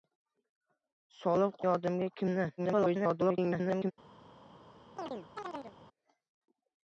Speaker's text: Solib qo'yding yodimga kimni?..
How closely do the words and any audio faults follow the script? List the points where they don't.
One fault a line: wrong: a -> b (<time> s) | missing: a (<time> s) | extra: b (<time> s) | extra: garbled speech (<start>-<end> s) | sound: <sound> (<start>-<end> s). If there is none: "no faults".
missing: qo'yding (1.6 s)
extra: garbled speech (2.6-3.9 s)
sound: chirp (5.0-5.8 s)